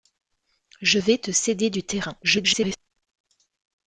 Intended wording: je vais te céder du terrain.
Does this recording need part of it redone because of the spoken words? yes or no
yes